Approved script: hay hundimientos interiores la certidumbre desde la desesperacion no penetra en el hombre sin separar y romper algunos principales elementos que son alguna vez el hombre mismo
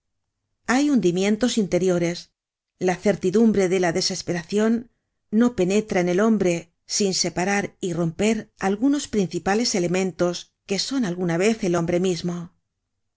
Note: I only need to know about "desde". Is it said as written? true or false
false